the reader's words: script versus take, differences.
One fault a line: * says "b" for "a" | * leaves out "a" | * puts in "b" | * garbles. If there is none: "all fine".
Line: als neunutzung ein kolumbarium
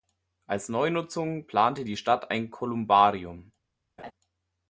* puts in "plante die stadt"